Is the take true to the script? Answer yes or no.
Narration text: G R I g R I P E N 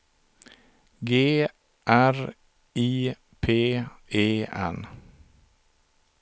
no